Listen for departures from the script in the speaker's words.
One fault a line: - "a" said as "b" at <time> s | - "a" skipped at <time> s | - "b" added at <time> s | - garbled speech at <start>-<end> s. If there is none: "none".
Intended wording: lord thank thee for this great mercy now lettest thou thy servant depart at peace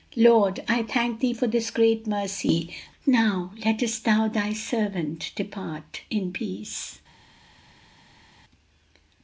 - "i" added at 0.7 s
- "at" said as "in" at 6.1 s